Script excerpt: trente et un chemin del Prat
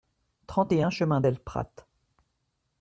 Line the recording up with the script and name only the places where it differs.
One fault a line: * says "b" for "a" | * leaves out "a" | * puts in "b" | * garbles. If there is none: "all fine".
all fine